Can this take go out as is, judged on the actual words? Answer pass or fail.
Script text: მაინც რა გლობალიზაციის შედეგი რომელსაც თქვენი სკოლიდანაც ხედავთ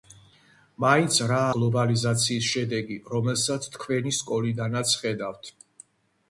pass